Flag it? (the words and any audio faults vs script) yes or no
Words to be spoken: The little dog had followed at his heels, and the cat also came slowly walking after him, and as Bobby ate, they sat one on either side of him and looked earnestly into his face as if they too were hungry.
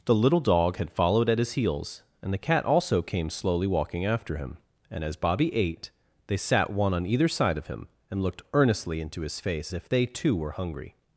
yes